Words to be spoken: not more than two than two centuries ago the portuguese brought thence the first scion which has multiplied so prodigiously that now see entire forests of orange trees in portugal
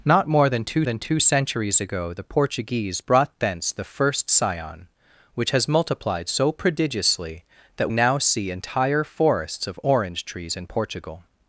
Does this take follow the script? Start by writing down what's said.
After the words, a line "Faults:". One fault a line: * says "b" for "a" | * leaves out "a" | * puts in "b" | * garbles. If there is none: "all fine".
not more than two than two centuries ago the portuguese brought thence the first scion which has multiplied so prodigiously that now see entire forests of orange trees in portugal
Faults:
all fine